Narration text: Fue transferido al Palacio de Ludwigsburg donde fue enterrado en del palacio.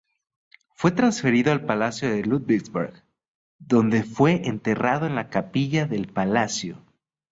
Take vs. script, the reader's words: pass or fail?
fail